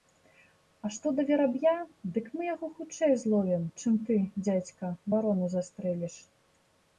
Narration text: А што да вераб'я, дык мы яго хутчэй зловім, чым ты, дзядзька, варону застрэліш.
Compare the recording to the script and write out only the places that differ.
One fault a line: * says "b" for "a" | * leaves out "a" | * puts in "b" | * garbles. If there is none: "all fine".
all fine